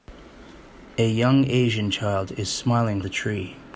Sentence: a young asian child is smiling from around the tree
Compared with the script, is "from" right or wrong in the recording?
wrong